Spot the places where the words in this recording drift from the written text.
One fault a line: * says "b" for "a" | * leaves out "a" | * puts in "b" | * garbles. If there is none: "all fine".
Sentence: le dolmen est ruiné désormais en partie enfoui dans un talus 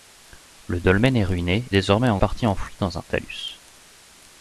all fine